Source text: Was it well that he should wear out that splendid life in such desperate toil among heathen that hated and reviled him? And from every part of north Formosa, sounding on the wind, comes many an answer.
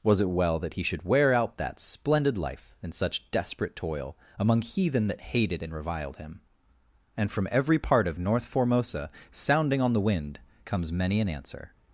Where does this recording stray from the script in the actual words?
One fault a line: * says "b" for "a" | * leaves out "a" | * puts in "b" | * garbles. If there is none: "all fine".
all fine